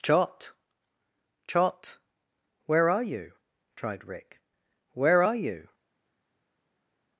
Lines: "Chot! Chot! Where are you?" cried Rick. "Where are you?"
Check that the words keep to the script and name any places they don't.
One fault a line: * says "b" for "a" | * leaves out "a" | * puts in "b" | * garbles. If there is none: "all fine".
* says "tried" for "cried"